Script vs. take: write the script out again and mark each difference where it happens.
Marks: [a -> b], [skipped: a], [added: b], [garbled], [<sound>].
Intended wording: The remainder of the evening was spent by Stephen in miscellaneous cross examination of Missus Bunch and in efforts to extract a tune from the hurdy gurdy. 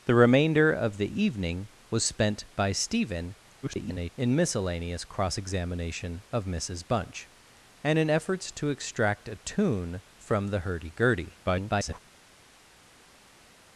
The remainder of the evening was spent by Stephen [garbled] in miscellaneous cross examination of Missus Bunch and in efforts to extract a tune from the hurdy gurdy. [garbled]